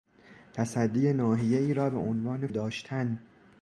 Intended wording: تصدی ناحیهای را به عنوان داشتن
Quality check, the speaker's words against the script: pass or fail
pass